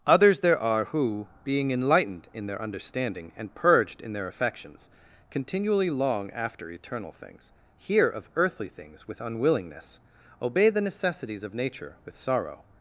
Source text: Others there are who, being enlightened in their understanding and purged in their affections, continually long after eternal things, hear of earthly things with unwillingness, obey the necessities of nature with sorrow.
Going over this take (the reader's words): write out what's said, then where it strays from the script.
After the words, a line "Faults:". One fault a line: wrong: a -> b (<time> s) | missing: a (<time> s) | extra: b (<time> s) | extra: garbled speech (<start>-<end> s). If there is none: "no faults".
Others there are who, being enlightened in their understanding and purged in their affections, continually long after eternal things, hear of earthly things with unwillingness, obey the necessities of nature with sorrow.
Faults:
no faults